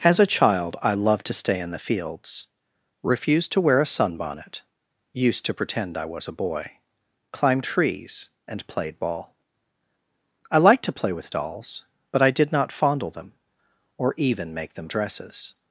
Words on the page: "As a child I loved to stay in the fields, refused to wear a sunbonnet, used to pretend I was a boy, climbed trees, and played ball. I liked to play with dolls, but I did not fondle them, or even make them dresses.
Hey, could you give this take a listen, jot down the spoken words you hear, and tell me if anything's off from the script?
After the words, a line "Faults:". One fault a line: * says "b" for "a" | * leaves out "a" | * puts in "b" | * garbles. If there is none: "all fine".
"As a child I loved to stay in the fields, refused to wear a sunbonnet, used to pretend I was a boy, climbed trees, and played ball. I liked to play with dolls, but I did not fondle them, or even make them dresses.
Faults:
all fine